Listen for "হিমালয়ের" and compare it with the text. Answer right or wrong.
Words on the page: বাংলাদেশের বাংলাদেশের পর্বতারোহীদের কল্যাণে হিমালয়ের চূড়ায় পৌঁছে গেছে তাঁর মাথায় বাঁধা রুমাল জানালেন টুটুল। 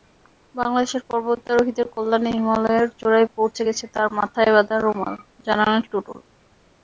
right